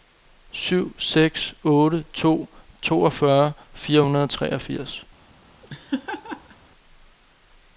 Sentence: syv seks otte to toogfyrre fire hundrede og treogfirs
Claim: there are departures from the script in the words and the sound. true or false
true